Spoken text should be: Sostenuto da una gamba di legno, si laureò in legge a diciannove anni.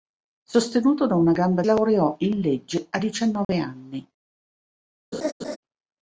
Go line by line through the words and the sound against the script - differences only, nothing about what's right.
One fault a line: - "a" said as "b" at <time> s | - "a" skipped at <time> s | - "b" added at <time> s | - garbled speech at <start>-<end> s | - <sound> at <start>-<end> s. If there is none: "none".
- "di legno si" skipped at 1.6 s
- dropout at 3.4-3.5 s
- laugh at 5.1-5.6 s